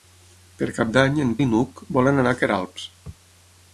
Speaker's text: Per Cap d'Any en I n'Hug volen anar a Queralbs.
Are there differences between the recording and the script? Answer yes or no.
no